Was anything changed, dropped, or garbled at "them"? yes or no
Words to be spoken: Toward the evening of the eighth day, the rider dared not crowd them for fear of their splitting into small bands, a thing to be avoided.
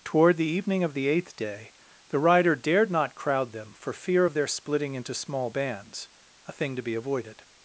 no